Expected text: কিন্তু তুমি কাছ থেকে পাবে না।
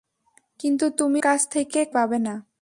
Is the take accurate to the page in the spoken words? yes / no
yes